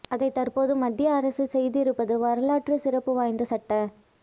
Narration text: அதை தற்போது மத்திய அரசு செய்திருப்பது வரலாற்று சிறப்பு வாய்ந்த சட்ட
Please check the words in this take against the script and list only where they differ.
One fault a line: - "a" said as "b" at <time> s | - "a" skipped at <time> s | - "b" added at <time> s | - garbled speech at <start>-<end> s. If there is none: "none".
none